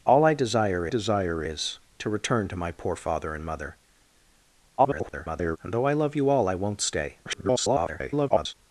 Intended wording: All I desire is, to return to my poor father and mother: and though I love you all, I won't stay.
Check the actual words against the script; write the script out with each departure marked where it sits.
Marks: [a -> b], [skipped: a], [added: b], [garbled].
All I desire [added: desire] is, to return to my poor father and mother: [garbled] and though I love you all, I won't stay. [garbled]